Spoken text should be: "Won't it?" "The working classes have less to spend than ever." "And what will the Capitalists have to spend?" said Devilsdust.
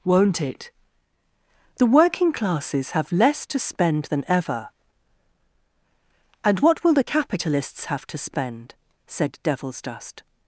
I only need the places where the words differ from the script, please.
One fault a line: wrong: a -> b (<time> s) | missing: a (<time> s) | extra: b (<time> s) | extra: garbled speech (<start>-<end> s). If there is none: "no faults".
no faults